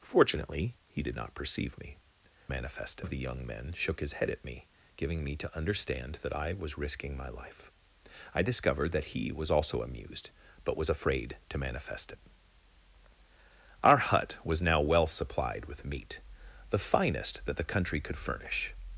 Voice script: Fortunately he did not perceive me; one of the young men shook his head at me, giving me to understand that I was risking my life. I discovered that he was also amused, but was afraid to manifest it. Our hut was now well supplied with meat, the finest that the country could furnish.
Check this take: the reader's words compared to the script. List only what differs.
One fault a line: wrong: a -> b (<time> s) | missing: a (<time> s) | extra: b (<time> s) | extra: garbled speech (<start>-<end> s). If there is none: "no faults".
wrong: one -> manifest (2.5 s)